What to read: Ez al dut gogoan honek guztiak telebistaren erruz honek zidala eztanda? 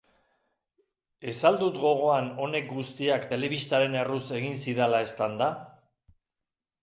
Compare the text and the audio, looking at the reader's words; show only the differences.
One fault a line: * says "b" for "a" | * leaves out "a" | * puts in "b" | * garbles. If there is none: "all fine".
* says "egin" for "honek"